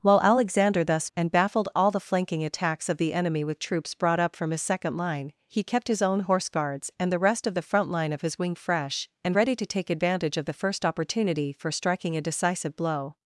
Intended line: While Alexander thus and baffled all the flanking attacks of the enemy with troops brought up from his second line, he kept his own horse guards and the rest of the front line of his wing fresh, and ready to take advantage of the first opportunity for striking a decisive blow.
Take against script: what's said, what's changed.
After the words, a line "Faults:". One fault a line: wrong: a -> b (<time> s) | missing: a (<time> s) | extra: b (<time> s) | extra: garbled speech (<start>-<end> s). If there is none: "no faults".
While Alexander thus and baffled all the flanking attacks of the enemy with troops brought up from his second line, he kept his own horse guards and the rest of the front line of his wing fresh, and ready to take advantage of the first opportunity for striking a decisive blow.
Faults:
no faults